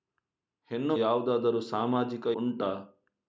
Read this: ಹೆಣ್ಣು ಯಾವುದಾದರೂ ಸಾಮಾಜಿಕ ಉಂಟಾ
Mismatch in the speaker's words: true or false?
false